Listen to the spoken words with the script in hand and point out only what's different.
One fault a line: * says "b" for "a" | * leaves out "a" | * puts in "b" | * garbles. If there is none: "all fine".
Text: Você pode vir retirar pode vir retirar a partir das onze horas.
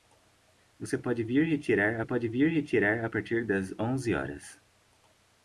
all fine